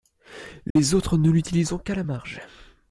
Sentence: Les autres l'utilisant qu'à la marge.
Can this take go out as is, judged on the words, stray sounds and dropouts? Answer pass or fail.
fail